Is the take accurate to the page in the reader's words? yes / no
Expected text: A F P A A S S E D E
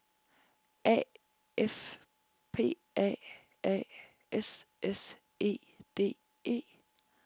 yes